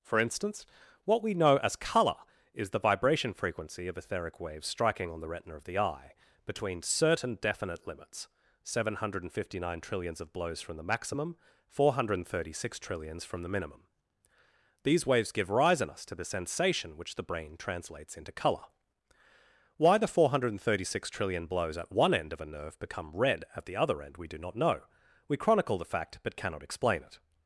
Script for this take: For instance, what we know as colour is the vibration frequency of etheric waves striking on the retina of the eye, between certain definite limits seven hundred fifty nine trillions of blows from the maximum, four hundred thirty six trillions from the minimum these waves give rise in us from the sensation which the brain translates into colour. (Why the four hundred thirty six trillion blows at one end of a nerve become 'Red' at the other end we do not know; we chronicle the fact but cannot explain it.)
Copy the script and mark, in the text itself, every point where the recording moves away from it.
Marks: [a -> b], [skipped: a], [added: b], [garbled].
For instance, what we know as colour is the vibration frequency of etheric waves striking on the retina of the eye, between certain definite limits seven hundred fifty nine trillions of blows from the maximum, four hundred thirty six trillions from the minimum these waves give rise in us [from -> to] the sensation which the brain translates into colour. (Why the four hundred thirty six trillion blows at one end of a nerve become 'Red' at the other end we do not know; we chronicle the fact but cannot explain it.)